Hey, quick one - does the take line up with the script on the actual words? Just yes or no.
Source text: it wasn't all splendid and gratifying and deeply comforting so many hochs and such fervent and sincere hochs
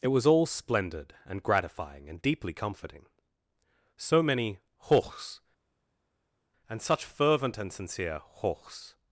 no